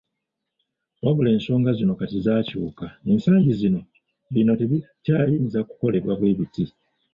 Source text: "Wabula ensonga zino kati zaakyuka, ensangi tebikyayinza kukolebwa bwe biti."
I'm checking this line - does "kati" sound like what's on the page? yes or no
yes